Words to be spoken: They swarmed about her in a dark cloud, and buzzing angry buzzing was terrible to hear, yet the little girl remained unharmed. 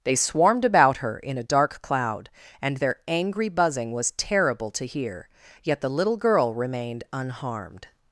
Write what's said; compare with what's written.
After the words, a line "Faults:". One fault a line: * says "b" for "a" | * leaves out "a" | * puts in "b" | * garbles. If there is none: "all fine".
They swarmed about her in a dark cloud, and their angry buzzing was terrible to hear, yet the little girl remained unharmed.
Faults:
* says "their" for "buzzing"